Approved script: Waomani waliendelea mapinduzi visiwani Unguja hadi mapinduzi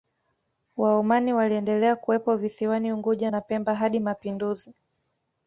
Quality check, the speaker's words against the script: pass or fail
fail